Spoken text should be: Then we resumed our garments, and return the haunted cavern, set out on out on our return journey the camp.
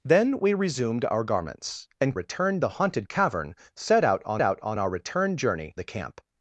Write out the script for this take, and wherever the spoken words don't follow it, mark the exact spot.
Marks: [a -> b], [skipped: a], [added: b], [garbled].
Then we resumed our garments, and return the haunted cavern, set out on out on our return journey the camp.